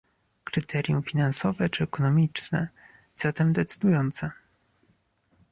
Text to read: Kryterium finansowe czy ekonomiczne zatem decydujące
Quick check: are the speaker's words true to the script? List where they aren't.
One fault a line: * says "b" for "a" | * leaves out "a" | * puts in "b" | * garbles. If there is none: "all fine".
all fine